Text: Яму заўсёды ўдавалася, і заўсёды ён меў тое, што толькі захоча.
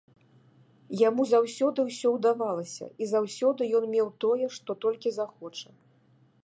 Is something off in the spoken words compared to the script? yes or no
yes